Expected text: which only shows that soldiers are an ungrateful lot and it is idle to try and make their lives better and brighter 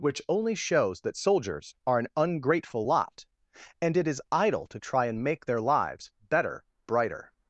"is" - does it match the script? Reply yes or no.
yes